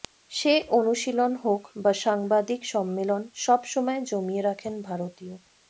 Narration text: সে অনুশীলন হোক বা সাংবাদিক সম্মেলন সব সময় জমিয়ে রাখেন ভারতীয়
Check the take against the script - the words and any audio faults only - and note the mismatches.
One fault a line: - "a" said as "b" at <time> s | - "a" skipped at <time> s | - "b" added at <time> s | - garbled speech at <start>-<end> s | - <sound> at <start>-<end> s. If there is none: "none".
none